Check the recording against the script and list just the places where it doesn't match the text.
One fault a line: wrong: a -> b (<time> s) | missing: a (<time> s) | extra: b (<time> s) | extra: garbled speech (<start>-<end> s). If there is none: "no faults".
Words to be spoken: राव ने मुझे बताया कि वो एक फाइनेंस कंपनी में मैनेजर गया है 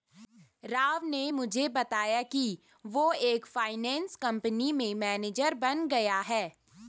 extra: बन (5.5 s)